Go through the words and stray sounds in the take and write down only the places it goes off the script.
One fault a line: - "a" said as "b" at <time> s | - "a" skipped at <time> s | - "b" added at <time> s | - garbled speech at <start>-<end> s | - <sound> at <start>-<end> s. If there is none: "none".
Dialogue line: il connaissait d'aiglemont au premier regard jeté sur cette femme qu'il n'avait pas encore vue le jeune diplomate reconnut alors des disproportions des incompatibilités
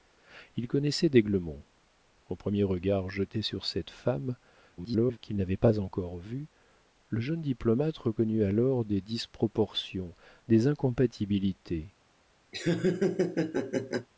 - garbled speech at 4.8-5.2 s
- laugh at 12.5-14.1 s